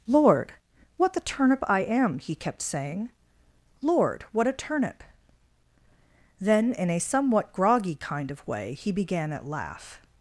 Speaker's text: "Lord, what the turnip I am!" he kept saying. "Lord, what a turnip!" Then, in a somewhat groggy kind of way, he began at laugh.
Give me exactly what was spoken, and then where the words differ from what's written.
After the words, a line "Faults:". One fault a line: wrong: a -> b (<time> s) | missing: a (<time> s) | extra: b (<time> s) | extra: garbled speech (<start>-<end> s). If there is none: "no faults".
"Lord, what the turnip I am!" he kept saying. "Lord, what a turnip!" Then, in a somewhat groggy kind of way, he began at laugh.
Faults:
no faults